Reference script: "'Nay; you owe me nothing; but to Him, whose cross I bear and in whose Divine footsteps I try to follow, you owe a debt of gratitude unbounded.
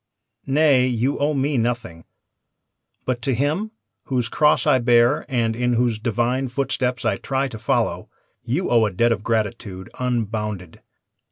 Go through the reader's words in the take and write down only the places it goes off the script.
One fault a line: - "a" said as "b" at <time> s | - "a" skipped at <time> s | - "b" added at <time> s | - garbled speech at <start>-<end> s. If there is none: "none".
none